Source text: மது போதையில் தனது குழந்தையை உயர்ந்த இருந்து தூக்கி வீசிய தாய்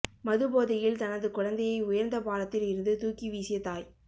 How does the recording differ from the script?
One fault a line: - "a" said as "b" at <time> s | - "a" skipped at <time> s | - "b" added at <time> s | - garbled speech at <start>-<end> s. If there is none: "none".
- "பாலத்தில்" added at 2.2 s